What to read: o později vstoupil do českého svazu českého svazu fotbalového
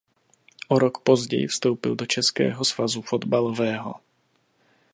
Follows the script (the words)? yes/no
no